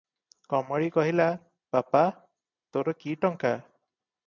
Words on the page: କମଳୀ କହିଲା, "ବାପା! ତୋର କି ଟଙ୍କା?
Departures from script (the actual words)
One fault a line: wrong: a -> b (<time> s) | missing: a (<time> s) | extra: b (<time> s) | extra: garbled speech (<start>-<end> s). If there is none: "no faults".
no faults